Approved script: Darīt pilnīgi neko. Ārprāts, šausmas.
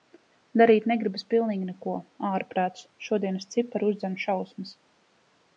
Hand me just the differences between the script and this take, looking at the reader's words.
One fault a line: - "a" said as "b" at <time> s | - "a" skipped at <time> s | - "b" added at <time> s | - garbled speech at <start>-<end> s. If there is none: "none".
- "negribas" added at 0.9 s
- "šodienas cipari uzdzen" added at 3.1 s